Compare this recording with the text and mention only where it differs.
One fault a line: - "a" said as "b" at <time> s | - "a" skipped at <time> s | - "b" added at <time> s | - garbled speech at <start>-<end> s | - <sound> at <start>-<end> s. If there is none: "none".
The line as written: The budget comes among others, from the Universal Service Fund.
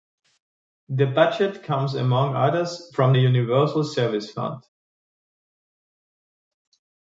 none